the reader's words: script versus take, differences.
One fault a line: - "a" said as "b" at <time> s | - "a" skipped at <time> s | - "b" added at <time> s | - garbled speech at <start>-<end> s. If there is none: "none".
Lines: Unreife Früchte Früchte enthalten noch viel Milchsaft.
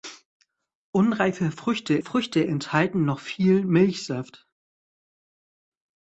none